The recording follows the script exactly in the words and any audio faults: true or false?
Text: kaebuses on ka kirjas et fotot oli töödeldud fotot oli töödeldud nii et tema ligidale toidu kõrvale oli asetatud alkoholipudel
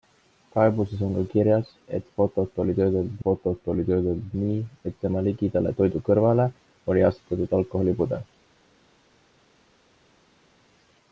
true